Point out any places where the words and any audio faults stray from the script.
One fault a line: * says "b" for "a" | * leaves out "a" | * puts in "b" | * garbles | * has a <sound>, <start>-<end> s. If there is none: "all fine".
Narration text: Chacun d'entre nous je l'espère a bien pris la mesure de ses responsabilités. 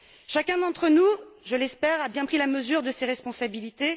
all fine